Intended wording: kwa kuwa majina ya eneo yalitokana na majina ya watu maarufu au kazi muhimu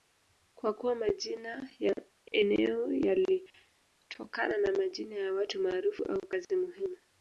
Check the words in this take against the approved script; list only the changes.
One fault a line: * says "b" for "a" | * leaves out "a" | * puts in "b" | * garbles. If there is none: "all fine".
all fine